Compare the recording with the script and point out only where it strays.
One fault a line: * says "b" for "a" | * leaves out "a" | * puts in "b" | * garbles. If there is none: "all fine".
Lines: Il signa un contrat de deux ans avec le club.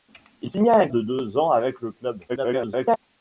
* leaves out "contrat"
* garbles